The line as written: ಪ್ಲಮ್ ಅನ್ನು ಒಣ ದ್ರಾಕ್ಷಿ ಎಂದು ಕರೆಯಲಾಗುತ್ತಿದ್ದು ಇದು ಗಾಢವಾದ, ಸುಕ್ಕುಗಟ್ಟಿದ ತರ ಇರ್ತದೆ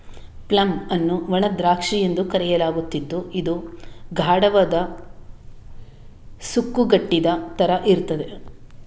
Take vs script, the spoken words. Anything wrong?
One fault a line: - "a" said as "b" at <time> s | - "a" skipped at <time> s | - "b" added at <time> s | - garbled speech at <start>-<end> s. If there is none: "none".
none